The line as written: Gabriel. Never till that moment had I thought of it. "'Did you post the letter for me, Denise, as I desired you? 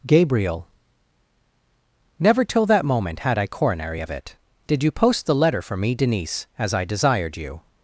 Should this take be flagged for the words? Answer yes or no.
yes